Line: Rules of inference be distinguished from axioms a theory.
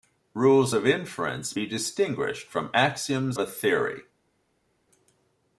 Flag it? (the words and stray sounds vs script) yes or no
no